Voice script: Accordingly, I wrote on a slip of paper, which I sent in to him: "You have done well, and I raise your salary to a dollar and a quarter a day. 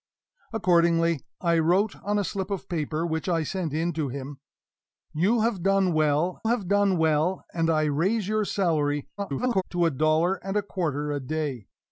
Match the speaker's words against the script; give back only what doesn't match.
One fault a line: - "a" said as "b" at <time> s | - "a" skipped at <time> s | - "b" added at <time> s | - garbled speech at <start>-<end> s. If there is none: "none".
- "have done well" added at 6.5 s
- garbled speech at 9.2-9.6 s